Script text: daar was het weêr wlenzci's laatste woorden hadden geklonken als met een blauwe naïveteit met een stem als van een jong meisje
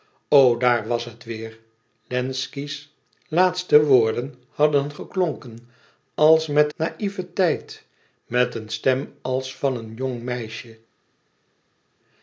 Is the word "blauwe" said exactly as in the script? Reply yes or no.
no